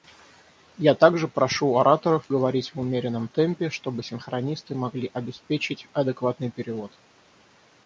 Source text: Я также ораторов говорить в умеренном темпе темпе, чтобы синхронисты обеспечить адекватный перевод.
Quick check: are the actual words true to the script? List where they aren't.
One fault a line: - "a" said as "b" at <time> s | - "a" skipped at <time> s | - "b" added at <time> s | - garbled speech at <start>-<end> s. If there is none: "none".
- "прошу" added at 1.3 s
- "темпе" skipped at 3.7 s
- "могли" added at 4.7 s